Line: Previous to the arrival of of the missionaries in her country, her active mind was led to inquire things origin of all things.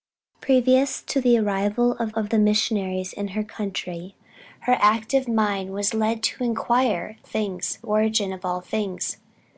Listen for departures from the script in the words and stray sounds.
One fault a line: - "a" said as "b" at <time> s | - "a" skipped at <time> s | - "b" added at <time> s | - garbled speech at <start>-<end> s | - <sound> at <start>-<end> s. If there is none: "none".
none